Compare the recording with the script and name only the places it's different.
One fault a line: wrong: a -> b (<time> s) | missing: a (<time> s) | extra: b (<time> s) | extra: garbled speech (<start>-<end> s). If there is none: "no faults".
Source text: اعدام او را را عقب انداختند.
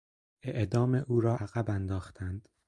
missing: را (1.4 s)